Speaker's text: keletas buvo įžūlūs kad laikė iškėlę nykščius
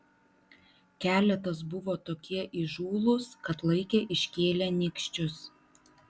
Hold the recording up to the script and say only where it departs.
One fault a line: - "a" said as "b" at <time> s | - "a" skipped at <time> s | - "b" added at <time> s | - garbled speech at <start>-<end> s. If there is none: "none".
- "tokie" added at 2.1 s